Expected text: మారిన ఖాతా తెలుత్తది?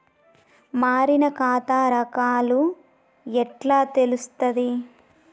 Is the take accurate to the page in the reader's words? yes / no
no